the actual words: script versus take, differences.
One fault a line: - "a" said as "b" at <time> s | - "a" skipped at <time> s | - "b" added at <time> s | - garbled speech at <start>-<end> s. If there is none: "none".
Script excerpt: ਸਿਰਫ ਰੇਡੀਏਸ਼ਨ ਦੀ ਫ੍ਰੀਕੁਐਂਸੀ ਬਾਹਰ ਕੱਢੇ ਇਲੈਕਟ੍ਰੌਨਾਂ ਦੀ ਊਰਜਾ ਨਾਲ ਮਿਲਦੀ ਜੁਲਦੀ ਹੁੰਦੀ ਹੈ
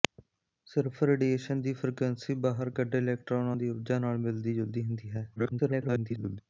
- garbled speech at 5.4-6.4 s